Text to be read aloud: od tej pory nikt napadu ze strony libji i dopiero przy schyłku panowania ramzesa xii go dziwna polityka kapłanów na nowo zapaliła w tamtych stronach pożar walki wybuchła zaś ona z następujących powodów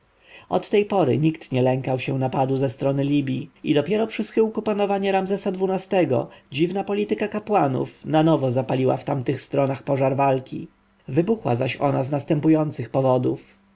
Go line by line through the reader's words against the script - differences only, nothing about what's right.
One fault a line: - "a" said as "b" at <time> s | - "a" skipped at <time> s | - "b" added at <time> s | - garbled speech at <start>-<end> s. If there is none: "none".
- "nie lękał się" added at 1.5 s